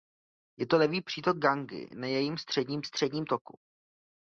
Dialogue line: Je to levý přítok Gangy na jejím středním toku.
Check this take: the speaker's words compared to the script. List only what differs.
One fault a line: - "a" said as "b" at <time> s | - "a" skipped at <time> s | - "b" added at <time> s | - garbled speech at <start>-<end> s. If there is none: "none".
- "středním" added at 2.8 s